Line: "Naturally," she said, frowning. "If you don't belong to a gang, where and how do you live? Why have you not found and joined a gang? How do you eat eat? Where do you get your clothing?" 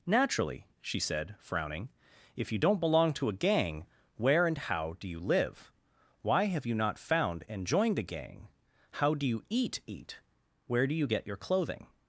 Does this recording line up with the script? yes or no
yes